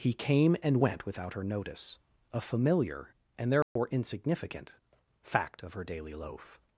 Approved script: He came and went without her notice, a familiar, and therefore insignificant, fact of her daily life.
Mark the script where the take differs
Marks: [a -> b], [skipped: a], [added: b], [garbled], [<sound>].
He came and went without her notice, a familiar, and therefore [dropout] insignificant, fact of her daily [life. -> loaf]